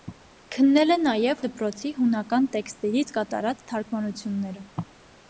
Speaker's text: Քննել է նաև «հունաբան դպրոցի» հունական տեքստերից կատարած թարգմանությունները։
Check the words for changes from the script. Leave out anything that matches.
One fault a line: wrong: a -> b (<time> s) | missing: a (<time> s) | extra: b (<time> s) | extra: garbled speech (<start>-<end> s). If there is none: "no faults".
missing: հունաբան (1.4 s)